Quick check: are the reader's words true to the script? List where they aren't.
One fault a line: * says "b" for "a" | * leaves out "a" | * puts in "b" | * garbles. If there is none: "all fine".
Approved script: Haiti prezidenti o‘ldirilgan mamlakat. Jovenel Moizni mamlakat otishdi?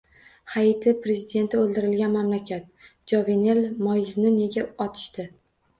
* says "nega" for "mamlakat"